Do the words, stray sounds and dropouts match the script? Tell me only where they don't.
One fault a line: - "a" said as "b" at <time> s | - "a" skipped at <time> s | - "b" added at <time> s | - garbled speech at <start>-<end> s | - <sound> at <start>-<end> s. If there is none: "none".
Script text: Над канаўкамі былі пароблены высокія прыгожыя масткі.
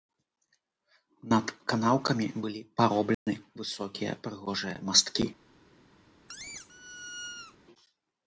- dropout at 3.1-3.3 s
- squeak at 6.3-7.6 s